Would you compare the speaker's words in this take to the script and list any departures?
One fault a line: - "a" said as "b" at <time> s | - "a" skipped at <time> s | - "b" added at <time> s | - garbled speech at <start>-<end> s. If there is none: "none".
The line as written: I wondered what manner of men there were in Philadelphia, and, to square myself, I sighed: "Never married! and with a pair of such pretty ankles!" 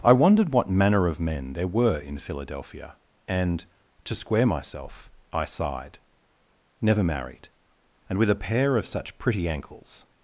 none